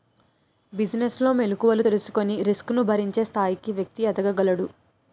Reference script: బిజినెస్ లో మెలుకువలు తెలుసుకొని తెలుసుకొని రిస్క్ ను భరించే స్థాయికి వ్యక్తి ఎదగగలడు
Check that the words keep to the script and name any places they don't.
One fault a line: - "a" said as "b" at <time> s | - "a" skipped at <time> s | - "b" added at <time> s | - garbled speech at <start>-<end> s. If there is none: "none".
- "తెలుసుకొని" skipped at 2.4 s